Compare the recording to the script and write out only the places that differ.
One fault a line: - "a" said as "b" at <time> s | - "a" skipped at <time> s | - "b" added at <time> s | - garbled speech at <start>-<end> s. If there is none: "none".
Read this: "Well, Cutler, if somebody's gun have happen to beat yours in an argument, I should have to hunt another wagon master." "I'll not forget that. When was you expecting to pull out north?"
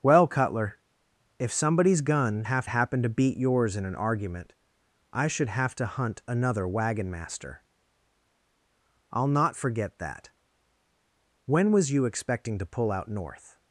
none